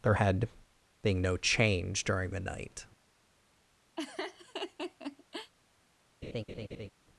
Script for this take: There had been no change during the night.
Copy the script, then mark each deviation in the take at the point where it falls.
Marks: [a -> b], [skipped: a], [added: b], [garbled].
There had [been -> being] no change during the night.